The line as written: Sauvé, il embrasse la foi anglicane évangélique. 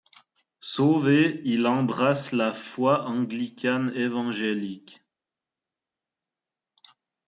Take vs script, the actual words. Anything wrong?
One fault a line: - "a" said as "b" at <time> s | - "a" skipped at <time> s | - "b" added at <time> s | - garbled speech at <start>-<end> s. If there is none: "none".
none